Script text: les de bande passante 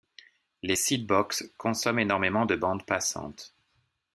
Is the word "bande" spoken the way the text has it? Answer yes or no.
yes